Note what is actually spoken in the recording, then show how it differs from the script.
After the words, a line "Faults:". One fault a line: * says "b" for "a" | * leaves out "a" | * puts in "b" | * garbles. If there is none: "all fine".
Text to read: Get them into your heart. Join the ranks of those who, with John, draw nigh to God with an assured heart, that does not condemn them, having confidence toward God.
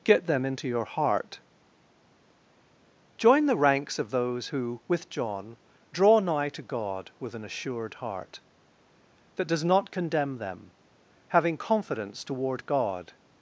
Get them into your heart. Join the ranks of those who, with John, draw nigh to God with an assured heart, that does not condemn them, having confidence toward God.
Faults:
all fine